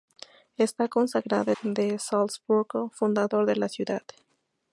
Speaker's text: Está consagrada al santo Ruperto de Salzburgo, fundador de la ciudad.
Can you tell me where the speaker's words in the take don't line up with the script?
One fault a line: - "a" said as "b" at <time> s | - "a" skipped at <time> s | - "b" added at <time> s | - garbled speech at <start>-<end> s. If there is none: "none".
- "al santo Ruperto" skipped at 1.5 s